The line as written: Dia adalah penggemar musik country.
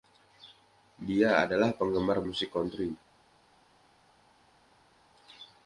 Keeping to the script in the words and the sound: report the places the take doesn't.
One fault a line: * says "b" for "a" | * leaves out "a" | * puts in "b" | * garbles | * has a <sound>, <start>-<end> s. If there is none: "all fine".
all fine